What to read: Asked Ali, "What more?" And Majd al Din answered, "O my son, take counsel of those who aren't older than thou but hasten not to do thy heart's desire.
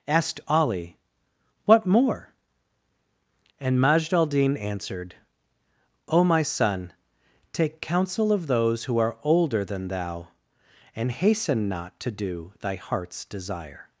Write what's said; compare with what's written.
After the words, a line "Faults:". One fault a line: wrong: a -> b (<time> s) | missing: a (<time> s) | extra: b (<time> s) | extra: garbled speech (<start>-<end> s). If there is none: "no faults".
Asked Ali, "What more?" And Majd al Din answered, "O my son, take counsel of those who are older than thou and hasten not to do thy heart's desire.
Faults:
wrong: aren't -> are (9.0 s)
wrong: but -> and (10.9 s)